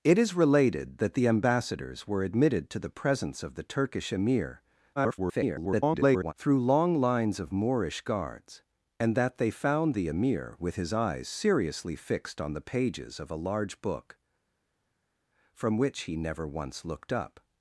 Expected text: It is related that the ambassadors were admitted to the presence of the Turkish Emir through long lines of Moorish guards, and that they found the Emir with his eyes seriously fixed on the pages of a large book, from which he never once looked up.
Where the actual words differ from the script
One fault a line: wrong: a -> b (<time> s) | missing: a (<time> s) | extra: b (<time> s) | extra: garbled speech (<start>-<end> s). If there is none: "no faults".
extra: garbled speech (5.0-6.3 s)